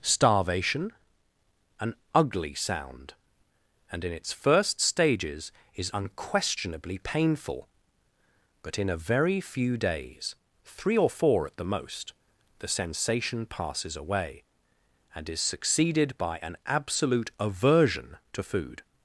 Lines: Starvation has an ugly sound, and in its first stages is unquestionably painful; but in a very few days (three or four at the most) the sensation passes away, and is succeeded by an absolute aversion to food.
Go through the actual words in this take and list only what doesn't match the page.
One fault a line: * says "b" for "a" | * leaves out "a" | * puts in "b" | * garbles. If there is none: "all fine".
* leaves out "has"